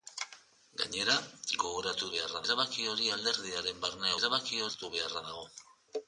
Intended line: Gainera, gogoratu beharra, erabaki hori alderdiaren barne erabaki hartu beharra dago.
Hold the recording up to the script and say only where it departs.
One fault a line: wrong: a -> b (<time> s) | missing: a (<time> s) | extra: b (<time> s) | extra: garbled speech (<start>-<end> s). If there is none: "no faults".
no faults